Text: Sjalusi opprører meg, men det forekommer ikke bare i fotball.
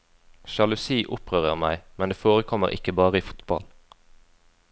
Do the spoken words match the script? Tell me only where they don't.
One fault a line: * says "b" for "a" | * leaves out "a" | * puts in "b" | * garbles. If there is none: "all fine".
all fine